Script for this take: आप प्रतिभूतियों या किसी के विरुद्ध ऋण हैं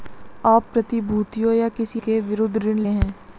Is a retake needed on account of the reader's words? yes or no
no